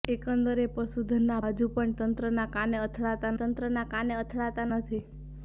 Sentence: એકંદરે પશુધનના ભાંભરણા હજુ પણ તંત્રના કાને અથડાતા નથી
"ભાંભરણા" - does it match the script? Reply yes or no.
no